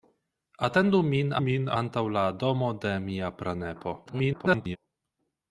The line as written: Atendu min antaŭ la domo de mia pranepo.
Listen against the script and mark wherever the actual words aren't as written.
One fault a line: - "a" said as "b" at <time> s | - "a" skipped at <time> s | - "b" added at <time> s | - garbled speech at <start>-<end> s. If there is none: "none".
- "min" added at 1.4 s
- garbled speech at 4.1-4.8 s